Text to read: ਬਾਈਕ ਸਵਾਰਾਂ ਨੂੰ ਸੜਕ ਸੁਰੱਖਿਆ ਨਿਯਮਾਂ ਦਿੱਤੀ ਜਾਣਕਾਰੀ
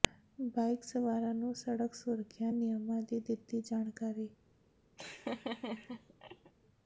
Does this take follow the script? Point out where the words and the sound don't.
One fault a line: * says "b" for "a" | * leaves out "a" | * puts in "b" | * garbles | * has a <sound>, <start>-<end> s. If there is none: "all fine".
* puts in "ਦੀ"
* has a laugh, 5.0-6.5 s